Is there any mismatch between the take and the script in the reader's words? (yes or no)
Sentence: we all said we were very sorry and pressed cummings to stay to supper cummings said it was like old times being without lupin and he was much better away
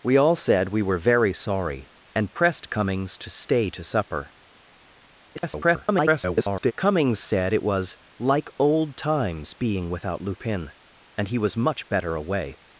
yes